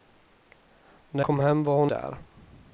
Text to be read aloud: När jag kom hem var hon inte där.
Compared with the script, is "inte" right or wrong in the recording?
wrong